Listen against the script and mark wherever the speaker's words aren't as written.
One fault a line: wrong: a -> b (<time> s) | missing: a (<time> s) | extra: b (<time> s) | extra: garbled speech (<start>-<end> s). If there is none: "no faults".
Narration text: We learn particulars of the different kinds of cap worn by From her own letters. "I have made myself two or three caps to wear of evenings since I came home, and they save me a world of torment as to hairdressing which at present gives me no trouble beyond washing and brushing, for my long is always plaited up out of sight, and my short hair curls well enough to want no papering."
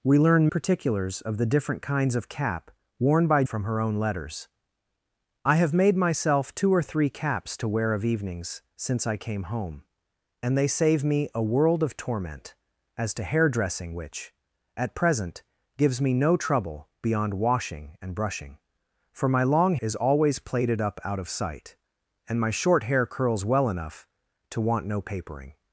no faults